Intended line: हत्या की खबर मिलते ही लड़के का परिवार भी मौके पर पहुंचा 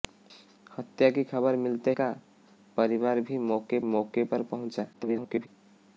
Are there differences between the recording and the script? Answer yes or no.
yes